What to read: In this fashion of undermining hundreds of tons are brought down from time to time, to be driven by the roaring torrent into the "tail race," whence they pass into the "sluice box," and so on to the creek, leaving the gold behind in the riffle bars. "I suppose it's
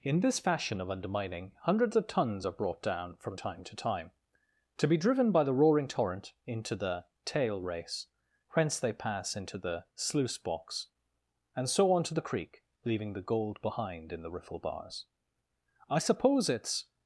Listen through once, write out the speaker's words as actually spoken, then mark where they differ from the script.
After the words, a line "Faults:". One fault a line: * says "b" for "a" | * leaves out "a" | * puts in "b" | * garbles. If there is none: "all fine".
In this fashion of undermining hundreds of tons are brought down from time to time, to be driven by the roaring torrent into the "tail race," whence they pass into the "sluice box," and so on to the creek, leaving the gold behind in the riffle bars. "I suppose it's
Faults:
all fine